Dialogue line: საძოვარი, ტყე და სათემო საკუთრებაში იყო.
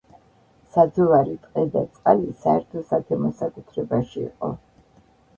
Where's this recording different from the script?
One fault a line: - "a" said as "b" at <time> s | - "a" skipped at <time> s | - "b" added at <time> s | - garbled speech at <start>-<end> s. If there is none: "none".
- "წყალი საერთო" added at 2.0 s